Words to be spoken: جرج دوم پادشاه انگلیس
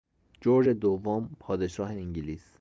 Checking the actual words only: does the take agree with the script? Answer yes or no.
yes